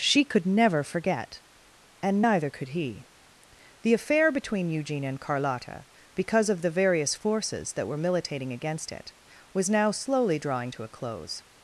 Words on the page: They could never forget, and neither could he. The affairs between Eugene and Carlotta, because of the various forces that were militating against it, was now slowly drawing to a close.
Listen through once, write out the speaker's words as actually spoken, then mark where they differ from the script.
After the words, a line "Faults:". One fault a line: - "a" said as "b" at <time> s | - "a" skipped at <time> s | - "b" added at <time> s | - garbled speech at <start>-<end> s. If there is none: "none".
She could never forget, and neither could he. The affair between Eugene and Carlotta, because of the various forces that were militating against it, was now slowly drawing to a close.
Faults:
- "They" said as "She" at 0.0 s
- "affairs" said as "affair" at 3.9 s